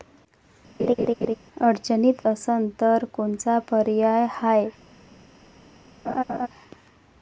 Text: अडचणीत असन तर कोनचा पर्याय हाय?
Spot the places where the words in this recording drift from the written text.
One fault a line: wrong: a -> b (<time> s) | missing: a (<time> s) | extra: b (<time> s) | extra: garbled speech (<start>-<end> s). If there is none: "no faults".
no faults